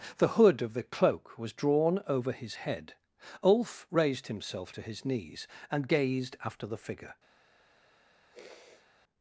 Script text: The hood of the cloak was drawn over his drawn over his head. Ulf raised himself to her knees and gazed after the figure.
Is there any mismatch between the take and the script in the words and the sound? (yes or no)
yes